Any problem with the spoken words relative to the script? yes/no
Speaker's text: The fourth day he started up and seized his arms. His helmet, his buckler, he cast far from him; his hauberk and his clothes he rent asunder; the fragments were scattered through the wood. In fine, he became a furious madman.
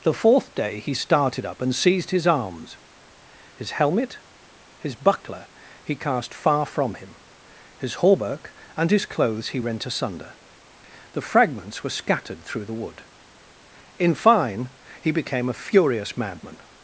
no